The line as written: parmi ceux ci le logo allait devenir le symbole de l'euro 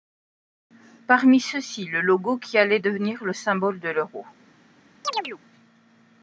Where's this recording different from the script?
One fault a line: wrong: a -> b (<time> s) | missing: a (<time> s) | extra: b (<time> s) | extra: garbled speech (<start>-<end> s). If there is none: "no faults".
extra: qui (2.4 s)